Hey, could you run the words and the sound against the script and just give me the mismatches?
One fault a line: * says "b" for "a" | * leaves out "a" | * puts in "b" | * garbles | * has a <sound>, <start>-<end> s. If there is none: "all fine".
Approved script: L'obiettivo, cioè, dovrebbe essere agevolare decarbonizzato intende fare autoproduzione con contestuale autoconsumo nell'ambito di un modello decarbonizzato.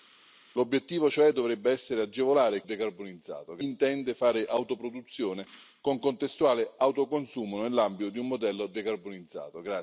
all fine